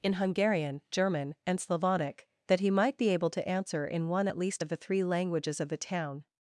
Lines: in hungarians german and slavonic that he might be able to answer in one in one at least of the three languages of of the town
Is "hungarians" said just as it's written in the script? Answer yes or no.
no